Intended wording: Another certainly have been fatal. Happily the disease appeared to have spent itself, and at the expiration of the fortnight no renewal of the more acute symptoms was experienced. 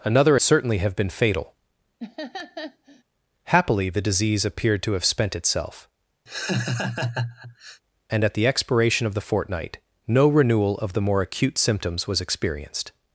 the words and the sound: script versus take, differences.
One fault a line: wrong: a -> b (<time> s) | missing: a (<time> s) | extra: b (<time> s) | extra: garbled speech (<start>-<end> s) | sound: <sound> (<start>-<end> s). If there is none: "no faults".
sound: laugh (2.0-3.0 s)
sound: laugh (6.3-7.8 s)